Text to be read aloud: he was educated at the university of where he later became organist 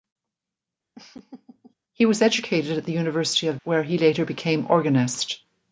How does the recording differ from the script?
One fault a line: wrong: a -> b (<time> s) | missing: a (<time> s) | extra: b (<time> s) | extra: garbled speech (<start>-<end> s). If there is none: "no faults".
no faults